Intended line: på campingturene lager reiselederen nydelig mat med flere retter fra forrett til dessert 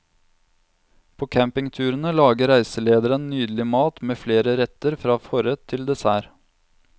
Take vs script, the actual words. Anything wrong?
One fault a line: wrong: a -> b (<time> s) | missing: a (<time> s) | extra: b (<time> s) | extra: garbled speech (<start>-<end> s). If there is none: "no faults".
no faults